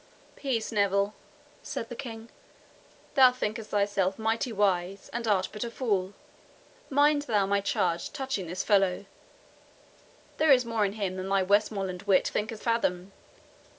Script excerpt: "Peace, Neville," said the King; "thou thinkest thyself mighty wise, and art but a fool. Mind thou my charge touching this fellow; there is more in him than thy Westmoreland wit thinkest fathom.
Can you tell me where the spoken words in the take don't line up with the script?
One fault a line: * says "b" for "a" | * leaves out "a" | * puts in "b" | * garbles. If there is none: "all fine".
all fine